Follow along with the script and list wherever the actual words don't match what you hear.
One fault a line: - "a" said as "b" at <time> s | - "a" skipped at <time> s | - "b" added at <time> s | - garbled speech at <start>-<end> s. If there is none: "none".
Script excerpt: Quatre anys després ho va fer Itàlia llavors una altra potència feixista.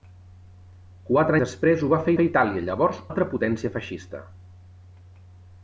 - "anys" skipped at 1.4 s
- "fer" added at 2.2 s
- "una" skipped at 3.0 s